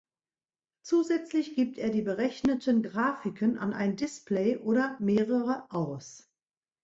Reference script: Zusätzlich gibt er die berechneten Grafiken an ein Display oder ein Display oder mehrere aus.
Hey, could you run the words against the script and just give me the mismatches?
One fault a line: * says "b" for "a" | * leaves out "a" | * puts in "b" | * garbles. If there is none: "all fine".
* leaves out "ein Display oder"